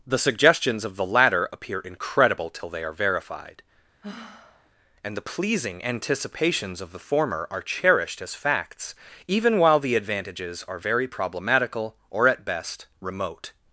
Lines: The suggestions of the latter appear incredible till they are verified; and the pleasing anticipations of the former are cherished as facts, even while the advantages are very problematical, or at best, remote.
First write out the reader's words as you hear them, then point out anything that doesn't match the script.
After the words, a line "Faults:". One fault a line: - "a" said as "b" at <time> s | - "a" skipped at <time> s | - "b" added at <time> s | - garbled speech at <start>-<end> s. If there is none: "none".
The suggestions of the latter appear incredible till they are verified; and the pleasing anticipations of the former are cherished as facts, even while the advantages are very problematical, or at best, remote.
Faults:
none